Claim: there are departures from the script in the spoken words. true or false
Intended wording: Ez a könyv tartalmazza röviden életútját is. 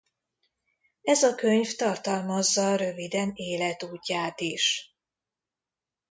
false